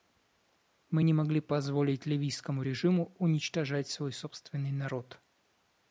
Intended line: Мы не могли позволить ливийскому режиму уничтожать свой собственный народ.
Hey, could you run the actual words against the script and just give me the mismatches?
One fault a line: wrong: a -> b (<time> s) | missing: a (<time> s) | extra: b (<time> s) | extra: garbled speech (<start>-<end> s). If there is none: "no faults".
no faults